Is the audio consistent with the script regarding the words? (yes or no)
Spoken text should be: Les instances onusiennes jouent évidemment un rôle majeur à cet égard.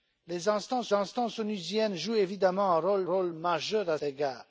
no